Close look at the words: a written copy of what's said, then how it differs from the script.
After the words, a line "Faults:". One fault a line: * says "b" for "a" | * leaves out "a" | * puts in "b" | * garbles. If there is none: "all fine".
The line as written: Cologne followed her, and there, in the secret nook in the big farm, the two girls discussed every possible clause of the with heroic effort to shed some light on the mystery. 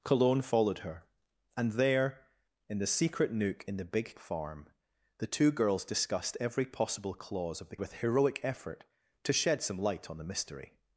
Cologne followed her, and there, in the secret nook in the big farm, the two girls discussed every possible clause of the with heroic effort to shed some light on the mystery.
Faults:
all fine